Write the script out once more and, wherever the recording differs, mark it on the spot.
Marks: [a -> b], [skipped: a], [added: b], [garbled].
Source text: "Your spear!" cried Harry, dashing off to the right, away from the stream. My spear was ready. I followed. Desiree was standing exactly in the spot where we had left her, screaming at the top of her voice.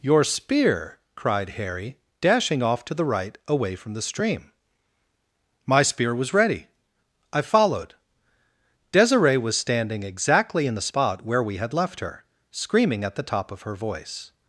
"Your spear!" cried Harry, dashing off to the right, away from the stream. My spear was ready. I followed. Desiree was standing exactly in the spot where we had left her, screaming at the top of her voice.